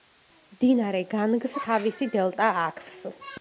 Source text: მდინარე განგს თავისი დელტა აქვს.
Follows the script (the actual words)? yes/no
yes